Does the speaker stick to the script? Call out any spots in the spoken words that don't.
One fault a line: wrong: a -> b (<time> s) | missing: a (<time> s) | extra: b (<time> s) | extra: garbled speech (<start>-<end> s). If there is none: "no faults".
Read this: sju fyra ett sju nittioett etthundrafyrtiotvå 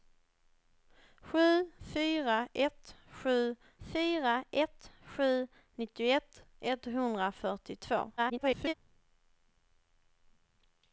extra: fyra ett sju (3.8 s)
extra: garbled speech (8.2-8.7 s)